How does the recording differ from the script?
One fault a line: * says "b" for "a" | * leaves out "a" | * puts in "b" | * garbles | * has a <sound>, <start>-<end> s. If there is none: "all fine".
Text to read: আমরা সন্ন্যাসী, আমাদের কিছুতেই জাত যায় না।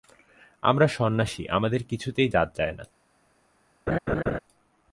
* has a laugh, 3.9-4.4 s